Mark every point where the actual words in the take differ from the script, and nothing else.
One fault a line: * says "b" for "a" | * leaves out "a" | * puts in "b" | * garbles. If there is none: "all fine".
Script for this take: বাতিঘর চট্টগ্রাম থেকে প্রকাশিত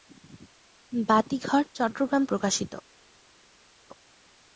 * leaves out "থেকে"